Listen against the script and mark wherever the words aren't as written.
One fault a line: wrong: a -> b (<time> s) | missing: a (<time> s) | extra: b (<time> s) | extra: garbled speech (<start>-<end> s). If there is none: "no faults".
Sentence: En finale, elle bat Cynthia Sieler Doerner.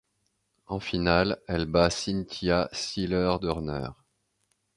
no faults